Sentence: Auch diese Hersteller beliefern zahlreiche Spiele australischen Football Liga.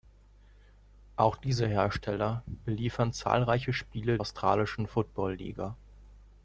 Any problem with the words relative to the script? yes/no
no